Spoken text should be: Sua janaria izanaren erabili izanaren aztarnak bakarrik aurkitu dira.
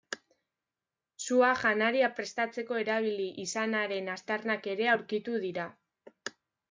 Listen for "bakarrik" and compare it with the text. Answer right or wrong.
wrong